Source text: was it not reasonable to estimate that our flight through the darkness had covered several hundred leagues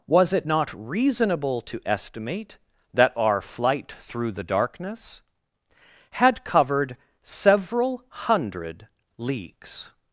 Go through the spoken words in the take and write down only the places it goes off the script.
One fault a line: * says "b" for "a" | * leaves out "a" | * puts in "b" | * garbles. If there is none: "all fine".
all fine